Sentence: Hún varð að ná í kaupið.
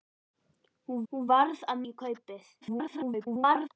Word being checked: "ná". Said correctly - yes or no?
no